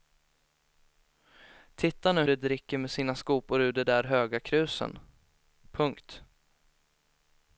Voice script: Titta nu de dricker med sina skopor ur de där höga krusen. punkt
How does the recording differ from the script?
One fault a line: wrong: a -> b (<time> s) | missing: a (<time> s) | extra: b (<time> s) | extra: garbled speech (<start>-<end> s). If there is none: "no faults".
no faults